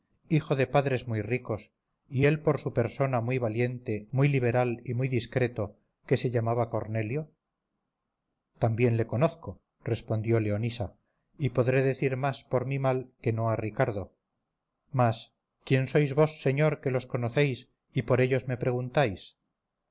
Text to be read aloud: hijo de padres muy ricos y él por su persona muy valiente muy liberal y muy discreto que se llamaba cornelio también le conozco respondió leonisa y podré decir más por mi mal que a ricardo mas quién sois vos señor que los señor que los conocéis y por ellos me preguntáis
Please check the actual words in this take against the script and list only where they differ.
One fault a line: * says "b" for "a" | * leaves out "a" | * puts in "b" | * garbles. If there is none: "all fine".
* puts in "no"
* leaves out "señor que los"